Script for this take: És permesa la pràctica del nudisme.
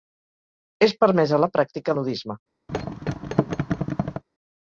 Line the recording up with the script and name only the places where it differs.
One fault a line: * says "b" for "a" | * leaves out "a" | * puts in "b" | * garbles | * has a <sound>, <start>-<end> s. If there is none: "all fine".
* leaves out "del"
* has a thud, 2.7-4.2 s